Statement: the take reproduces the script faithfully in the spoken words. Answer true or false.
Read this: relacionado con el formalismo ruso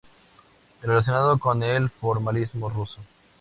true